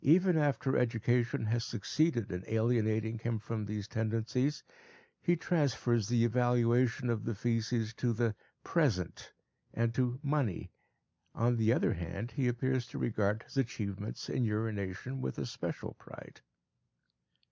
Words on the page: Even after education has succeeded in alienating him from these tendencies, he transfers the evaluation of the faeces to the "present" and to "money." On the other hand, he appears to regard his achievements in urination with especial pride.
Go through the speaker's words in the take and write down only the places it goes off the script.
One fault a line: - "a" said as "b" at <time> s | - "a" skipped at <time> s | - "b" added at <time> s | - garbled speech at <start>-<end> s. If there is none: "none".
none